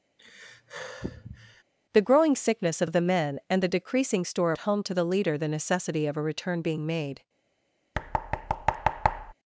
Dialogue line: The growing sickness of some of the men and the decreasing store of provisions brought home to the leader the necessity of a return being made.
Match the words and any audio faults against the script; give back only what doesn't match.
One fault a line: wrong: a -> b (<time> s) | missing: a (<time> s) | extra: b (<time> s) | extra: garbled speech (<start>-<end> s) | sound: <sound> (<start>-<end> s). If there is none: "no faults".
sound: sigh (0.2-1.6 s)
missing: some (2.9 s)
missing: of provisions brought (4.5 s)
sound: thud (7.9-9.3 s)